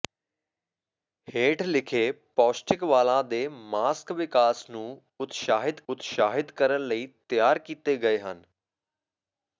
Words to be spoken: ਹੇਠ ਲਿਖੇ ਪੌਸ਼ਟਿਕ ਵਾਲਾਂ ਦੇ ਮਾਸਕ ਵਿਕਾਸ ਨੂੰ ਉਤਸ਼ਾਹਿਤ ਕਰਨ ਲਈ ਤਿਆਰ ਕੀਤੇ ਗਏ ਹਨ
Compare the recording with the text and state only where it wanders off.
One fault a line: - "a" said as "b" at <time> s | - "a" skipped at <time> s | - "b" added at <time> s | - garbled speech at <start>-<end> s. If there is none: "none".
- "ਉਤਸ਼ਾਹਿਤ" added at 5.9 s